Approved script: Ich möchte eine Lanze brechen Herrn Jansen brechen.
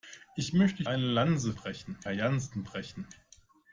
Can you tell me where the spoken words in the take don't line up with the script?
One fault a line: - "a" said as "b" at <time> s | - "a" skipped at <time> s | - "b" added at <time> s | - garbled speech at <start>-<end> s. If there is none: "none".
none